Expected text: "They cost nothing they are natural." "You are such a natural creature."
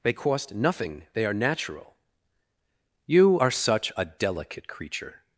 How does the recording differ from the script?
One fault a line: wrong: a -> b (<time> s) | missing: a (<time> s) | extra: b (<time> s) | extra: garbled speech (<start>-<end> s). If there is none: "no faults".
wrong: natural -> delicate (4.0 s)